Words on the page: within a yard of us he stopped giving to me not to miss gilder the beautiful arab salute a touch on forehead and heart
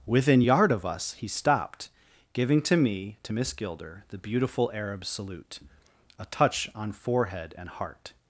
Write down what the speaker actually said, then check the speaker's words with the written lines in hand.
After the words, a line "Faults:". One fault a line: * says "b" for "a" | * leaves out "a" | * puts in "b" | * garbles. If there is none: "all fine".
within yard of us he stopped giving to me to miss gilder the beautiful arab salute a touch on forehead and heart
Faults:
* leaves out "a"
* leaves out "not"